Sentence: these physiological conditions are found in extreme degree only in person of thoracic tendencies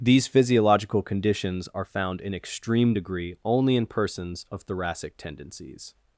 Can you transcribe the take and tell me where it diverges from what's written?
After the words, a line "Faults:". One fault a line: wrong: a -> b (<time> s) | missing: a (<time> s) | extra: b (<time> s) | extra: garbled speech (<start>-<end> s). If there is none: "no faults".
these physiological conditions are found in extreme degree only in persons of thoracic tendencies
Faults:
wrong: person -> persons (3.8 s)